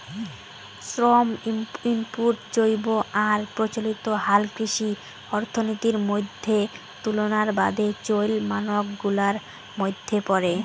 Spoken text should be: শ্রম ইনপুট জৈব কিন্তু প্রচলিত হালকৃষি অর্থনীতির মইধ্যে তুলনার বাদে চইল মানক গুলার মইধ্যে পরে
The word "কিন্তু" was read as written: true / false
false